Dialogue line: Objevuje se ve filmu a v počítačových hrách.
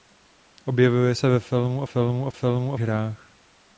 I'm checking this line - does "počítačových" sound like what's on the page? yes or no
no